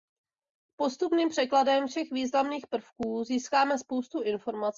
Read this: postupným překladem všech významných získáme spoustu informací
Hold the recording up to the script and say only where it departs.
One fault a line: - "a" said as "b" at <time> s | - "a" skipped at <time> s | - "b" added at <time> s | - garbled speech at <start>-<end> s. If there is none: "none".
- "prvků" added at 2.7 s